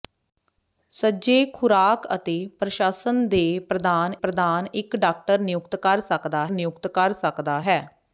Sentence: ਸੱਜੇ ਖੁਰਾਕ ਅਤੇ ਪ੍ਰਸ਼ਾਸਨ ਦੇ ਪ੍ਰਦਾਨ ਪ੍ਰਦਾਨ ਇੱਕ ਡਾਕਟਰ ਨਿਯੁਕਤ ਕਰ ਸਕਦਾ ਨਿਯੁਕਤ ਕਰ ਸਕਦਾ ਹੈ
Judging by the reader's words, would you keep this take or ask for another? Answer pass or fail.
pass